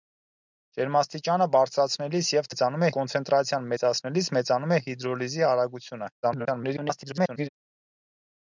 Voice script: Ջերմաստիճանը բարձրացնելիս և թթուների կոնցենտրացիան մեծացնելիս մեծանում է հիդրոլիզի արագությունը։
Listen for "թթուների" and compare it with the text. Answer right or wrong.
wrong